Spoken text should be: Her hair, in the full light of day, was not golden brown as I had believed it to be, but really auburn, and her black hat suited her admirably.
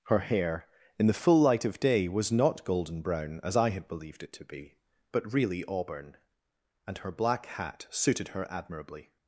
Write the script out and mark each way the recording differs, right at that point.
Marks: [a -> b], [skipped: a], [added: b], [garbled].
Her hair, in the full light of day, was not golden brown as I had believed it to be, but really auburn, and her black hat suited her admirably.